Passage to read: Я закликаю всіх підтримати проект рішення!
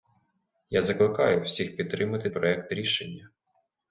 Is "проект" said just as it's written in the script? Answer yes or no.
yes